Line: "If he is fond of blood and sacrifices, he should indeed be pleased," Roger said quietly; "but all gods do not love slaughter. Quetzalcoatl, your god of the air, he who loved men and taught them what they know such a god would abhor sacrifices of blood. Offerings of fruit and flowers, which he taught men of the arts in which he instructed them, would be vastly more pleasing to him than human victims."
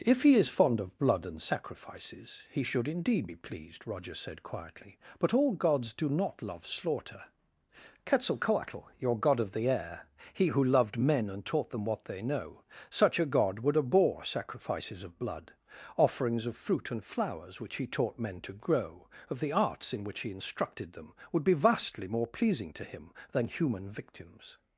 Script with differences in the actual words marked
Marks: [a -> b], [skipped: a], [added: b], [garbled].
"If he is fond of blood and sacrifices, he should indeed be pleased," Roger said quietly; "but all gods do not love slaughter. Quetzalcoatl, your god of the air, he who loved men and taught them what they know such a god would abhor sacrifices of blood. Offerings of fruit and flowers, which he taught men [added: to grow] of the arts in which he instructed them, would be vastly more pleasing to him than human victims."